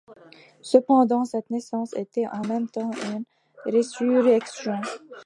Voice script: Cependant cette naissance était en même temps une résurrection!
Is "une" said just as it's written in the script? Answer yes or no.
yes